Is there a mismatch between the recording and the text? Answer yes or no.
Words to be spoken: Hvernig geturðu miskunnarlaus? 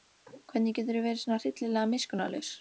yes